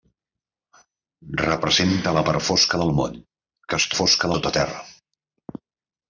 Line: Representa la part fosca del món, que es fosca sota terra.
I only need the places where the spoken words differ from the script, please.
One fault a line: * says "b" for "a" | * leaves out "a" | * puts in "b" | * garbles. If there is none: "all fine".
all fine